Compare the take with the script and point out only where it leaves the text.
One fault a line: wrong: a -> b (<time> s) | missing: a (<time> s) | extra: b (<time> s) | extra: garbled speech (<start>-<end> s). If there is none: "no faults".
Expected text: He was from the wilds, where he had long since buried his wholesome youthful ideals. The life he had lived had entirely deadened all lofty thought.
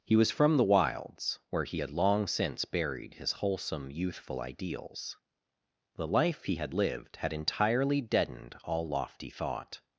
no faults